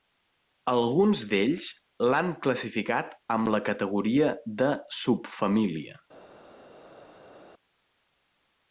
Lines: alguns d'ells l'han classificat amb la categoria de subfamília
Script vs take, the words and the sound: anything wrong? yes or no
no